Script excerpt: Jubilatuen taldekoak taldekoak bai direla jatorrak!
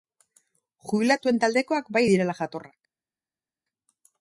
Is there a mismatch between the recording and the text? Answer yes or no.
yes